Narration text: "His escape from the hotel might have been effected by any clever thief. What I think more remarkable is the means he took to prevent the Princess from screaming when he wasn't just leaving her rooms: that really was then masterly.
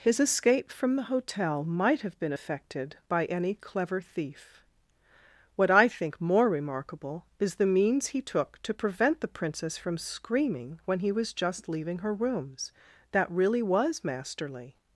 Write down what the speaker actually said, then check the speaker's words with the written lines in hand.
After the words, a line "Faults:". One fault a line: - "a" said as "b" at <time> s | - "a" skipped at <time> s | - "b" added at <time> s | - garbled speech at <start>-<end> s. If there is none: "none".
"His escape from the hotel might have been effected by any clever thief. What I think more remarkable is the means he took to prevent the Princess from screaming when he was just leaving her rooms: that really was masterly.
Faults:
- "wasn't" said as "was" at 11.1 s
- "then" skipped at 14.0 s